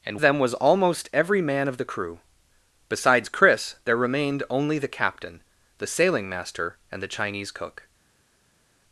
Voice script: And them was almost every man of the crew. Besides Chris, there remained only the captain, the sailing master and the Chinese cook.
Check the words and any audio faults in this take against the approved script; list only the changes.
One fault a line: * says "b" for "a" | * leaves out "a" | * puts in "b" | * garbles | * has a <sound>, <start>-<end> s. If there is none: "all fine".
all fine